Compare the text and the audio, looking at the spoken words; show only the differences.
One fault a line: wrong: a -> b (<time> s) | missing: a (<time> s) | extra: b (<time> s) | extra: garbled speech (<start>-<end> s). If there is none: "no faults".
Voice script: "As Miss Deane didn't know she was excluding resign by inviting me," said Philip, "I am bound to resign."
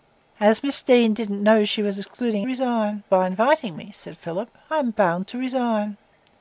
no faults